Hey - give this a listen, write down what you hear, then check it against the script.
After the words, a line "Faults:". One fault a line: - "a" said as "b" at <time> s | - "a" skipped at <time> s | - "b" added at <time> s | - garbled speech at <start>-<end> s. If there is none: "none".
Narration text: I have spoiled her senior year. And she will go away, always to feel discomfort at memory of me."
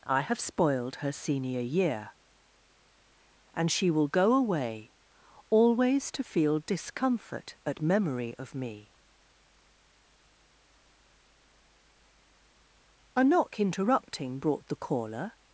I have spoiled her senior year. And she will go away, always to feel discomfort at memory of me." A knock interrupting brought the caller
Faults:
- "A knock interrupting brought the caller" added at 13.1 s